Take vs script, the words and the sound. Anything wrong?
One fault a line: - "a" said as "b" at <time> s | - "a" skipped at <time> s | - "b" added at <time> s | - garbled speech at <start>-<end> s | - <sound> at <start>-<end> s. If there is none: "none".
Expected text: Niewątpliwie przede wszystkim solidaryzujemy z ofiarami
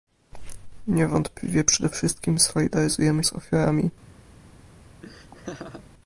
- laugh at 5.0-5.9 s